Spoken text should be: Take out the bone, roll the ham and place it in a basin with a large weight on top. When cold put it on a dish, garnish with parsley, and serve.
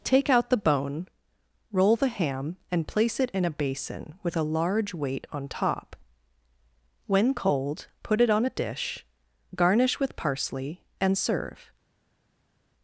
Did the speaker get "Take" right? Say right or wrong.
right